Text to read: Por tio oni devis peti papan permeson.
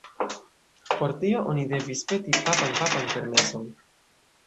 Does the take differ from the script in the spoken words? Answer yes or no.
yes